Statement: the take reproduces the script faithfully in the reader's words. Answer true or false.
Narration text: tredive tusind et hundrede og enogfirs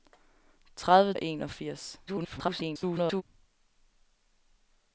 false